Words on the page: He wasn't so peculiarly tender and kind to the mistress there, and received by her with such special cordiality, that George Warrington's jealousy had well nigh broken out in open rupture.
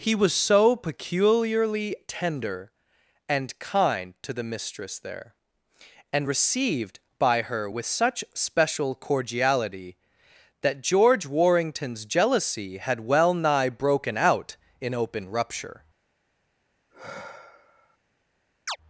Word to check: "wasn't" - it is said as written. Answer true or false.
false